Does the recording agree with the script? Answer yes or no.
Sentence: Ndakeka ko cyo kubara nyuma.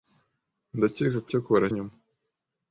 yes